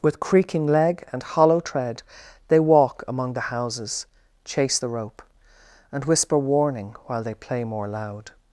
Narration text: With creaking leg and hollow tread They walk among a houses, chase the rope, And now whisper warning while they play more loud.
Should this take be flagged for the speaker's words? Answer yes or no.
yes